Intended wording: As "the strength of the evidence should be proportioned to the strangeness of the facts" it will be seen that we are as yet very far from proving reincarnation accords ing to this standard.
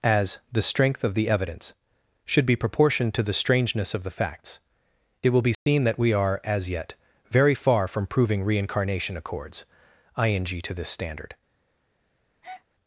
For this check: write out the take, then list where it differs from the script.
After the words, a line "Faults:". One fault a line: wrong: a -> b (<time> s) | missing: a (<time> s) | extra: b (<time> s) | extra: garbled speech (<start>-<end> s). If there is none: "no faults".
As "the strength of the evidence should be proportioned to the strangeness of the facts" it will be seen that we are as yet very far from proving reincarnation accords ing to this standard.
Faults:
no faults